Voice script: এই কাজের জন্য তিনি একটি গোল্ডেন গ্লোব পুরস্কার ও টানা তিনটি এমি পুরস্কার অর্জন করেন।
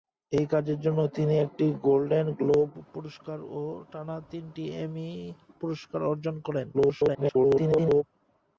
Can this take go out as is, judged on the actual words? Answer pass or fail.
fail